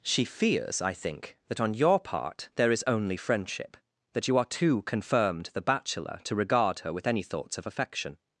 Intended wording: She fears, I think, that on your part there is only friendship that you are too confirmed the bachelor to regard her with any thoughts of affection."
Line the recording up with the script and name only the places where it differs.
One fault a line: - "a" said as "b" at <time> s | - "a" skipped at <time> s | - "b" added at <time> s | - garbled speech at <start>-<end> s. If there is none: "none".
none